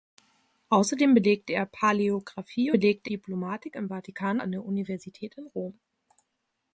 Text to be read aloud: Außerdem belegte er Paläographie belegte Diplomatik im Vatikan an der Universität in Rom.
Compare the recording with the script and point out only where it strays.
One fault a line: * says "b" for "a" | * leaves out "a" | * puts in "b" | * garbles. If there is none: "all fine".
all fine